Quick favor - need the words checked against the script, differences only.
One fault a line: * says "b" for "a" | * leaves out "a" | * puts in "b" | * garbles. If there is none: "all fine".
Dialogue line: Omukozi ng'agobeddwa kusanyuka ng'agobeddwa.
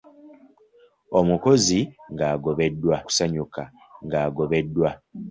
all fine